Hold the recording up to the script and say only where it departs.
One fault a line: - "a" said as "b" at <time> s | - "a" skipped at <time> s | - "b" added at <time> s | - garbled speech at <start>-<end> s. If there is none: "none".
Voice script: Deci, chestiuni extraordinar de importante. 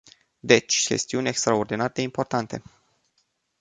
none